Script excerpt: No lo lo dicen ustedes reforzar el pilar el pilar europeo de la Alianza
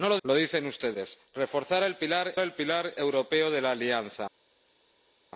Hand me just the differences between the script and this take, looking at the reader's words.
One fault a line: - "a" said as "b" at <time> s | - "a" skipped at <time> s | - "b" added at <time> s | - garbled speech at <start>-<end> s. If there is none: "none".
none